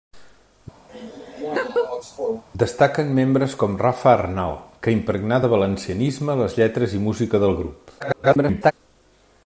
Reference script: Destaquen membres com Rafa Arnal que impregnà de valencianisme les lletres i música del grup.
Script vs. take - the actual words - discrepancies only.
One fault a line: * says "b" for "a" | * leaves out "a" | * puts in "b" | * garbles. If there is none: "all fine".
* garbles